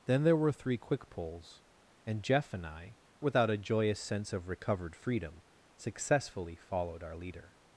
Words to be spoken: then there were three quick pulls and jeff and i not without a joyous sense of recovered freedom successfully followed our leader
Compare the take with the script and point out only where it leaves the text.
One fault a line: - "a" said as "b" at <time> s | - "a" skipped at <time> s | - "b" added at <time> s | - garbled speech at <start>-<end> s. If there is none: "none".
- "not" skipped at 3.0 s